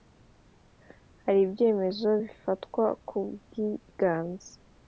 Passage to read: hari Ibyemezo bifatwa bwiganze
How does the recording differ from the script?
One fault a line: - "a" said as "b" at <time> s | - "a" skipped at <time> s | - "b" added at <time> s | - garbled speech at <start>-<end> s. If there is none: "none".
- "ku" added at 3.1 s